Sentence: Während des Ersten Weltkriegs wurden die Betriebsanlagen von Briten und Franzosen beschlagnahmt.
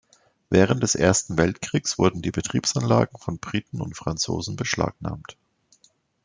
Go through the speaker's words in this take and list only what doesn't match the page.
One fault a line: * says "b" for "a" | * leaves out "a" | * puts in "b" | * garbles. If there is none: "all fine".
all fine